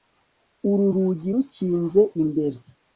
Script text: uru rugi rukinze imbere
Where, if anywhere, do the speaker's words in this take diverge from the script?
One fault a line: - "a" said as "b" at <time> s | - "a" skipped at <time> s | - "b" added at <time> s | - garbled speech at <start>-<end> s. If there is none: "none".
none